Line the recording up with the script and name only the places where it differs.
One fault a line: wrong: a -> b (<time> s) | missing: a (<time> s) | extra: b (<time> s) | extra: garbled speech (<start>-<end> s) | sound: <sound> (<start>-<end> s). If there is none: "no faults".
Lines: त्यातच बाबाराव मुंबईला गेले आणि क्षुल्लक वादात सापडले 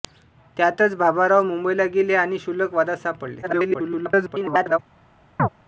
extra: garbled speech (3.4-4.8 s)
sound: chirp (5.4-5.5 s)